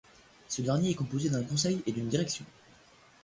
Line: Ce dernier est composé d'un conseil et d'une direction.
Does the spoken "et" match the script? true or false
true